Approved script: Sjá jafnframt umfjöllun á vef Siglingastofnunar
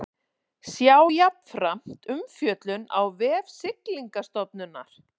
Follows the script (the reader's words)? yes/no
yes